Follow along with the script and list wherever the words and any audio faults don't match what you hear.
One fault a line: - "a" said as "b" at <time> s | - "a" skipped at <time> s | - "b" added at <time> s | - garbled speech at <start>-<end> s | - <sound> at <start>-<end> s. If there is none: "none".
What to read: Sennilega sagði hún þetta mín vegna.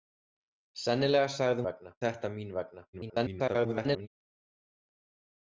- "hún" said as "vegna" at 1.7 s
- garbled speech at 2.9-4.1 s